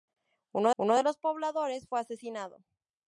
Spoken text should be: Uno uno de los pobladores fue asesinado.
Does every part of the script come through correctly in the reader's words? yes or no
yes